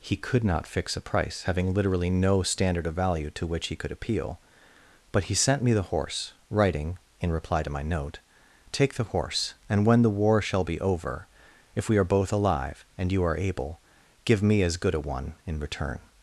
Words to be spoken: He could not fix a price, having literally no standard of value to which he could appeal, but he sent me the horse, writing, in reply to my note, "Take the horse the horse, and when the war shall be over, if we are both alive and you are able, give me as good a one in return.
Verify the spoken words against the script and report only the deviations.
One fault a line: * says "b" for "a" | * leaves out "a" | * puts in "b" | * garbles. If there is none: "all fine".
* leaves out "the horse"